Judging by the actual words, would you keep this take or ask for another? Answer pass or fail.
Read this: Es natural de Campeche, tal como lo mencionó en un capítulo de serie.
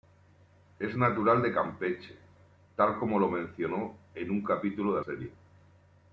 pass